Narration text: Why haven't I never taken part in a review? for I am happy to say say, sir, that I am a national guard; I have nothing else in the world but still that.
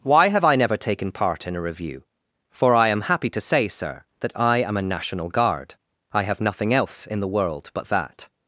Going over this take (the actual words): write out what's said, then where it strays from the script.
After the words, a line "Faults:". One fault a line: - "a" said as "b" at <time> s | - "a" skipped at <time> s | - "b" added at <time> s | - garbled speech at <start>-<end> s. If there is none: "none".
Why have I never taken part in a review? for I am happy to say, sir, that I am a national guard; I have nothing else in the world but that.
Faults:
- "haven't" said as "have" at 0.3 s
- "say" skipped at 3.7 s
- "still" skipped at 7.9 s